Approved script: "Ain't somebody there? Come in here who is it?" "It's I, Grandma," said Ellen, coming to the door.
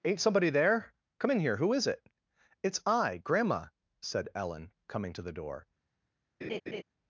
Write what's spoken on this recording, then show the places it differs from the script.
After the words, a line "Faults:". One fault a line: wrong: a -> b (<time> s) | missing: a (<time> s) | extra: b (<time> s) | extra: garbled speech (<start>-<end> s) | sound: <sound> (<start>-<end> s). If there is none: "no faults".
"Ain't somebody there? Come in here who is it?" "It's I, Grandma," said Ellen, coming to the door.
Faults:
sound: laugh (6.4-6.8 s)